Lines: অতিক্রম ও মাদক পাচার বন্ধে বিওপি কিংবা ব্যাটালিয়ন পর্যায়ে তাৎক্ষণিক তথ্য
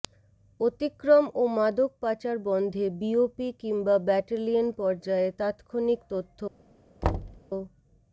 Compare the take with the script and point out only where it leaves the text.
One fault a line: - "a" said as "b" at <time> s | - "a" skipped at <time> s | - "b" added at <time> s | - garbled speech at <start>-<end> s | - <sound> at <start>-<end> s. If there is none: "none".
- thud at 7.0-7.4 s